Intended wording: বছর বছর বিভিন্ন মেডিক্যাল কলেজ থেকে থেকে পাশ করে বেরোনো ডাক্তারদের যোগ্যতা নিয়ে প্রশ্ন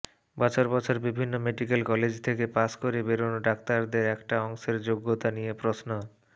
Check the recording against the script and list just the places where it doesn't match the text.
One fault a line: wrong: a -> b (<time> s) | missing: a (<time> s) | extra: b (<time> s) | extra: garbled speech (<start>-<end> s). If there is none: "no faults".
missing: থেকে (2.5 s)
extra: একটা অংশের (4.2 s)